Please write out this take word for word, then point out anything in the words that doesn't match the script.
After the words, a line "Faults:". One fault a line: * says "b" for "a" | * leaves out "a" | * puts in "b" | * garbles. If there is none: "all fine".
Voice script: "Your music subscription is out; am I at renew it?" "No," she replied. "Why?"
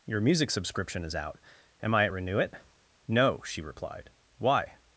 "Your music subscription is out; am I at renew it?" "No," she replied. "Why?"
Faults:
all fine